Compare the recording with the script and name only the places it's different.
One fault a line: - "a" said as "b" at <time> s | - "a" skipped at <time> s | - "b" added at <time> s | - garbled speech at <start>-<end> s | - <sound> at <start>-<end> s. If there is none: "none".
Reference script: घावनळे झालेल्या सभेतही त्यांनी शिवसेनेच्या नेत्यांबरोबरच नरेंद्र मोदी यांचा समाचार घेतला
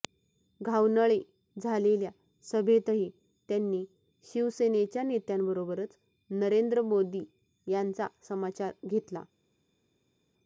none